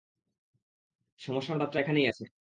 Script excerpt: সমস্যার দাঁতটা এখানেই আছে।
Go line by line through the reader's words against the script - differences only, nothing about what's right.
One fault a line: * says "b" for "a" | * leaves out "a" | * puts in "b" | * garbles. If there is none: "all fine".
all fine